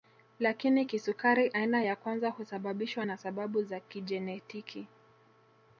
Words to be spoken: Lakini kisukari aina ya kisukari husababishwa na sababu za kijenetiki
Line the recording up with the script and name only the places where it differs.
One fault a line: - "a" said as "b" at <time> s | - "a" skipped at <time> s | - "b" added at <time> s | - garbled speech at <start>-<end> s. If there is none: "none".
- "kisukari" said as "kwanza" at 2.0 s